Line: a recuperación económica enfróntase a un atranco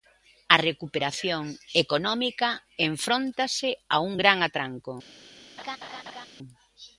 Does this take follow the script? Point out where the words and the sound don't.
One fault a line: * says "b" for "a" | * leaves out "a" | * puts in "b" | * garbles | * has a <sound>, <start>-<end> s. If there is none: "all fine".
* puts in "gran"
* has a laugh, 5.6-6.3 s